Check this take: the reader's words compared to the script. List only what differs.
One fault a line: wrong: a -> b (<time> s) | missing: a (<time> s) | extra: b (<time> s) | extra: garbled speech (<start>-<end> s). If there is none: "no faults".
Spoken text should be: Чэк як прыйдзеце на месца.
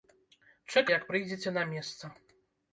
no faults